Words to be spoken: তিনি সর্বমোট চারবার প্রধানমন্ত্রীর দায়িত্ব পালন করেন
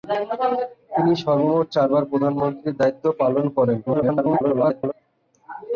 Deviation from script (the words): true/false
true